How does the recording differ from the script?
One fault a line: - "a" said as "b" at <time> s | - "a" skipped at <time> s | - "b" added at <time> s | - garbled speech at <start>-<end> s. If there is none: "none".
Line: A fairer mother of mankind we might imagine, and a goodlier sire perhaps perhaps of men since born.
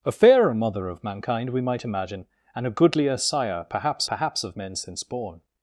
none